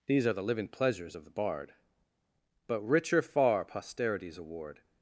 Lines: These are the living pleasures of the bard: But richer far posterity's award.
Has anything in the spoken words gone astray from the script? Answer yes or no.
no